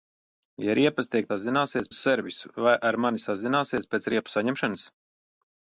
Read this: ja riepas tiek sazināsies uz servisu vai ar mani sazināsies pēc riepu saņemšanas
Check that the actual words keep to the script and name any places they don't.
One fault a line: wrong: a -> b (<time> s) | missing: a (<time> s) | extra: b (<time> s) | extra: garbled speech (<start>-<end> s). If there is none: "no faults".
no faults